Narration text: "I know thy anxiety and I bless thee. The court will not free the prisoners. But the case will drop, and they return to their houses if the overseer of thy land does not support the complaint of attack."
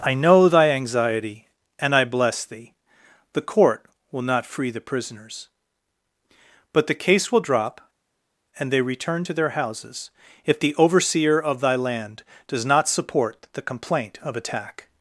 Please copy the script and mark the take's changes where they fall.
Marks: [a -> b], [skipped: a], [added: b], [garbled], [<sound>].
"I know thy anxiety and I bless thee. The court will not free the prisoners. But the case will drop, and they return to their houses if the overseer of thy land does not support the complaint of attack."